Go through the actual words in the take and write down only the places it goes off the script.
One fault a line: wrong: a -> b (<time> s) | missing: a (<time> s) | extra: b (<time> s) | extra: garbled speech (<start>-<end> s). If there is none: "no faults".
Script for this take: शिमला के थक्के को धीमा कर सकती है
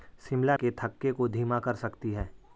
no faults